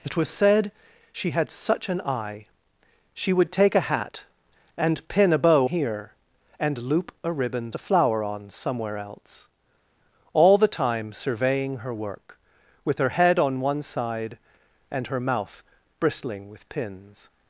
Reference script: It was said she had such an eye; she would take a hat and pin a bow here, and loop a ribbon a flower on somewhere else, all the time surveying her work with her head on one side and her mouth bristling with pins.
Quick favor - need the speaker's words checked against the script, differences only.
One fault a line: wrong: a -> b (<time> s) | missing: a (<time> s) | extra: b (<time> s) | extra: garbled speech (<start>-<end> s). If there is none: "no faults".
no faults